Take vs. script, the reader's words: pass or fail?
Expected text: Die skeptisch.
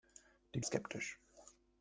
pass